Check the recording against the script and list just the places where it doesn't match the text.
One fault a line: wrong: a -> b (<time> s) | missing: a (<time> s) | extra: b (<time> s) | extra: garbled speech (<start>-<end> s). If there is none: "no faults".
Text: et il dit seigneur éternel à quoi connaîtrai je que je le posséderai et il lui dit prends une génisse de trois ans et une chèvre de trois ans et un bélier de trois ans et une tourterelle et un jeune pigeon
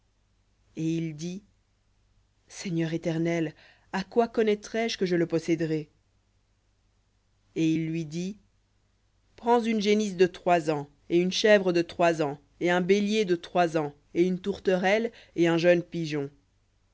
no faults